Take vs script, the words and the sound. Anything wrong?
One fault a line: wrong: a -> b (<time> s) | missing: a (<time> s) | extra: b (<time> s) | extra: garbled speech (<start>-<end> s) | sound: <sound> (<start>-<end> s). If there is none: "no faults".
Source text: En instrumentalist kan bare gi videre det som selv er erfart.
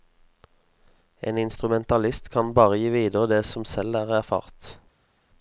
no faults